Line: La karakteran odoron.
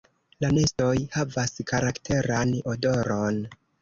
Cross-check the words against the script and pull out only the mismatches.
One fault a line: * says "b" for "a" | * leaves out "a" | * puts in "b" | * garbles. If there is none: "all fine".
* puts in "nestoj havas"